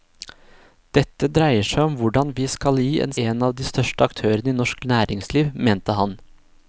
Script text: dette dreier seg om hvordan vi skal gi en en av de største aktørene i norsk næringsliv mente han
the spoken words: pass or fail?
pass